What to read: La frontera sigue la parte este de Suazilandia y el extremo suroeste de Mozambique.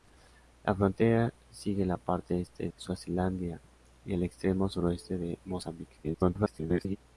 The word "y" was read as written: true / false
true